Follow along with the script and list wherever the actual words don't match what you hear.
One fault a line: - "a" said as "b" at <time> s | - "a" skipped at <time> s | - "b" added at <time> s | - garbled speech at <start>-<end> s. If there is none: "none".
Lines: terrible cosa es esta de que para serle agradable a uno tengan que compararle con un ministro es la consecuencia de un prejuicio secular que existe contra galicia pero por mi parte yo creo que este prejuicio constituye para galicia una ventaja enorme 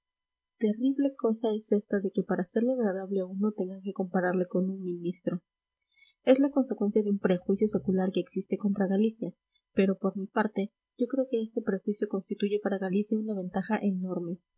none